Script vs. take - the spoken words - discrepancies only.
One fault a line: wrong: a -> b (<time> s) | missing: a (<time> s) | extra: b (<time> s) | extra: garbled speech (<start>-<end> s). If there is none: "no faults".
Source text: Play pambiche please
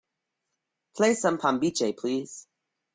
extra: some (1.1 s)